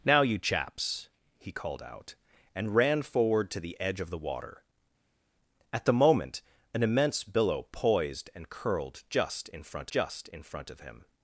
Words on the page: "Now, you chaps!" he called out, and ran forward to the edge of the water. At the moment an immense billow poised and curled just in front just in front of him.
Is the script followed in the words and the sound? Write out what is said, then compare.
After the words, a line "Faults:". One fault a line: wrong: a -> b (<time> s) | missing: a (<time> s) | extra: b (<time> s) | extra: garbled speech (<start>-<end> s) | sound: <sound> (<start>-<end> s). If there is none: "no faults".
"Now, you chaps!" he called out, and ran forward to the edge of the water. At the moment an immense billow poised and curled just in front just in front of him.
Faults:
no faults